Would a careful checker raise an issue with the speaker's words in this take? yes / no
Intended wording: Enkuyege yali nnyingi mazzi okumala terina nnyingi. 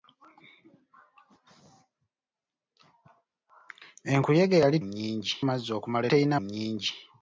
no